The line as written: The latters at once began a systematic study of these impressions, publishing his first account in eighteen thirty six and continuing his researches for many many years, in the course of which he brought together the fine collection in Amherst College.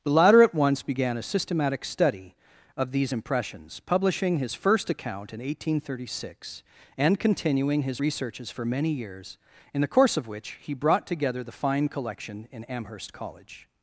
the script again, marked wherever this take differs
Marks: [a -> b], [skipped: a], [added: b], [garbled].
The [latters -> latter] at once began a systematic study of these impressions, publishing his first account in eighteen thirty six and continuing his researches for many [skipped: many] years, in the course of which he brought together the fine collection in Amherst College.